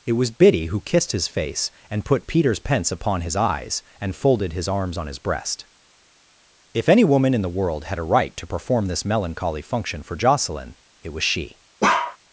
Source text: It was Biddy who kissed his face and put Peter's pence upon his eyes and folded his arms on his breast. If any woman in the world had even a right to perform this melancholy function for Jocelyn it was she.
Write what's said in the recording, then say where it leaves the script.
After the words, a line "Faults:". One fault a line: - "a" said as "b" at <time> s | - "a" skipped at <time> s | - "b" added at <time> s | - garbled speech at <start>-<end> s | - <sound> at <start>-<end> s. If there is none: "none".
It was Biddy who kissed his face and put Peter's pence upon his eyes and folded his arms on his breast. If any woman in the world had a right to perform this melancholy function for Jocelyn it was she.
Faults:
- "even" skipped at 8.0 s
- bark at 11.8-12.2 s